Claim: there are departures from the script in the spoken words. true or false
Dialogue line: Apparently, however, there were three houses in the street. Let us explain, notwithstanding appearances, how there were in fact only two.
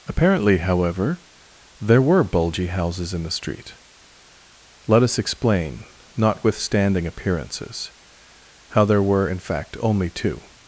true